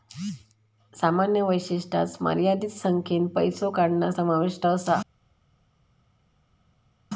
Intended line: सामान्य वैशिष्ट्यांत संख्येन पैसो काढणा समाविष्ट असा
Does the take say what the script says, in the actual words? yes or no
no